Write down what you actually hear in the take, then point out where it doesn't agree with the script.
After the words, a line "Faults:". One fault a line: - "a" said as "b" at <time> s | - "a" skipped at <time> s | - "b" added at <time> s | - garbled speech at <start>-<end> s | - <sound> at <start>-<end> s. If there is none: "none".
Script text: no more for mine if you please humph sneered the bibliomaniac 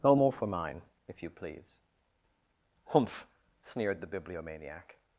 no more for mine if you please humph sneered the bibliomaniac
Faults:
none